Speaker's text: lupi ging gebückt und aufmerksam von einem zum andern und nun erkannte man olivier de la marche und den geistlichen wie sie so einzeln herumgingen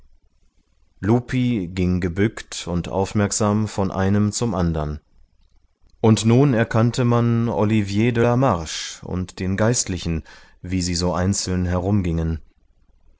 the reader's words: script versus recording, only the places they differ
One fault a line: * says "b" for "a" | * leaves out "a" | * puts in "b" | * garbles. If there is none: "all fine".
all fine